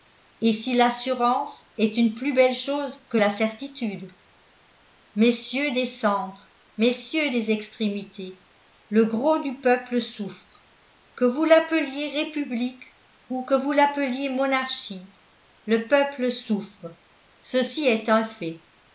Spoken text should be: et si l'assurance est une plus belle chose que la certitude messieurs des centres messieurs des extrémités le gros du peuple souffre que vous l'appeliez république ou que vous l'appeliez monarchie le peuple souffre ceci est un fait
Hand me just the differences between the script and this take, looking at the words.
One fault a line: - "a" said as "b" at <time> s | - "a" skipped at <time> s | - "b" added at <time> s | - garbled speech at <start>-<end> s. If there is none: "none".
none